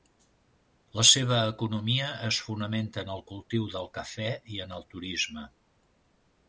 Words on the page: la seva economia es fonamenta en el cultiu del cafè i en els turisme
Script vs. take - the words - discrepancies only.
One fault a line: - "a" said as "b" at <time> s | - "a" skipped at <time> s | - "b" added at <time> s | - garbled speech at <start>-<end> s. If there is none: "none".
- "els" said as "el" at 4.8 s